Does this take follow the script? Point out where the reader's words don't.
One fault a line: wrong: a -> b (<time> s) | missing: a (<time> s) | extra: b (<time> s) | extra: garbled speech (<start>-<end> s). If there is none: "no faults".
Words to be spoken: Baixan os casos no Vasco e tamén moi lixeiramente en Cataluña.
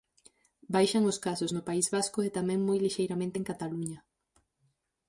extra: País (1.7 s)